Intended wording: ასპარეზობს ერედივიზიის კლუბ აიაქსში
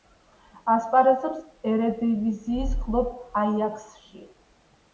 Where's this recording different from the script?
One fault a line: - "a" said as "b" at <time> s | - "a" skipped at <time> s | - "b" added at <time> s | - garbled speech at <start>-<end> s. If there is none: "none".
none